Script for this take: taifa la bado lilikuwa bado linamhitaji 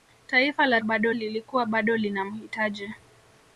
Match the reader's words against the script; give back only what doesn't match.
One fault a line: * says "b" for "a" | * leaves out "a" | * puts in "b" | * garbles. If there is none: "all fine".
all fine